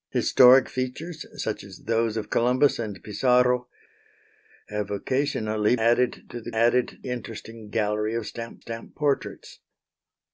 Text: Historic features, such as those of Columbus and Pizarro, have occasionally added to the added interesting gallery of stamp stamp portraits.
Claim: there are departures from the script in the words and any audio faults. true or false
false